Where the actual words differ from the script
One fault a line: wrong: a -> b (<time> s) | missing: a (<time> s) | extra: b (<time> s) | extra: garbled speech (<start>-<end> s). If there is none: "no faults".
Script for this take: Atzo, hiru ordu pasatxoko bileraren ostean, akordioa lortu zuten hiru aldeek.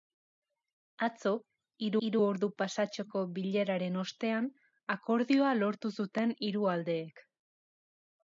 extra: hiru (2.1 s)